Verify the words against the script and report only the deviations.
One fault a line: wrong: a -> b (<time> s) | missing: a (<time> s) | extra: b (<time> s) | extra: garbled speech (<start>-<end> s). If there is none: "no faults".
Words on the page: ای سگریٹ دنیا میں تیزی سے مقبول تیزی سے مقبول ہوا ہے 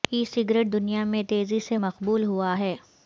missing: تیزی سے مقبول (2.2 s)